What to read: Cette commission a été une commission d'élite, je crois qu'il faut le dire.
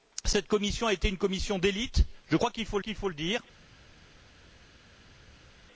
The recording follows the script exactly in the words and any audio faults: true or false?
false